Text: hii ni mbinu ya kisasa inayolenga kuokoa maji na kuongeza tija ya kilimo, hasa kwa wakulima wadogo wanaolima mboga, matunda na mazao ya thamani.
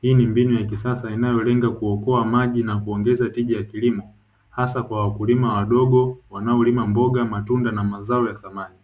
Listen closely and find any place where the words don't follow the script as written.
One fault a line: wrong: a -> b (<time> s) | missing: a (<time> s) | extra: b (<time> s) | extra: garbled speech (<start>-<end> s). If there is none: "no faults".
no faults